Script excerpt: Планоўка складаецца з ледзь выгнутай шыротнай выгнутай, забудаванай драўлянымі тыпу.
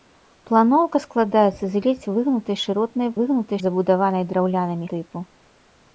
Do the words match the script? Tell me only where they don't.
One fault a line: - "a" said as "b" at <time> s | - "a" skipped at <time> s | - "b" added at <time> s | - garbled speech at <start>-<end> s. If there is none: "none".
none